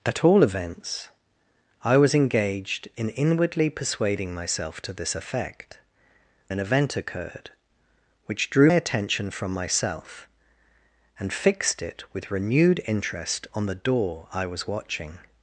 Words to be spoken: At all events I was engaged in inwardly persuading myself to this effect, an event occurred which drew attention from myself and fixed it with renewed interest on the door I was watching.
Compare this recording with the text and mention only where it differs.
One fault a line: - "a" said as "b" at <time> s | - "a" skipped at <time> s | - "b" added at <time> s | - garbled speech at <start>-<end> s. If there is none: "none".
none